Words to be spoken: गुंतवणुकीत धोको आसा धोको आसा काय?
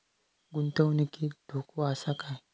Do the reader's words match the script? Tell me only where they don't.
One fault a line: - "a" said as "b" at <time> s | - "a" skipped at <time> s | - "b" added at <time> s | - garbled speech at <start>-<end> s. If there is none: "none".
- "धोको आसा" skipped at 2.1 s